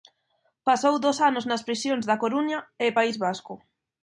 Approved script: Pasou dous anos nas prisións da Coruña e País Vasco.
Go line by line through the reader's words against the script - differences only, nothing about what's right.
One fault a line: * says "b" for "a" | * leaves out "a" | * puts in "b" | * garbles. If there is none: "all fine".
all fine